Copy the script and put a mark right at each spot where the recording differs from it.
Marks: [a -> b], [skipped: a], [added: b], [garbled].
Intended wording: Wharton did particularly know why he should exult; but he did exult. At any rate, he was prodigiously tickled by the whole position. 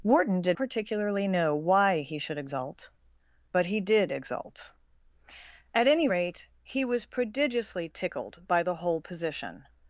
Wharton did particularly know why he should exult; but he did exult. At any rate, he was prodigiously tickled by the whole position.